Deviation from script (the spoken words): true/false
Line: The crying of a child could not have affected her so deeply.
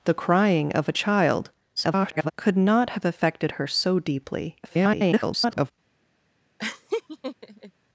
true